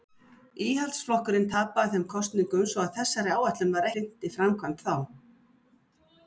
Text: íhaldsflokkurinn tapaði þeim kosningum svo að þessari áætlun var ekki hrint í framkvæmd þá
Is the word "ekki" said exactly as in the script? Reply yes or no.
no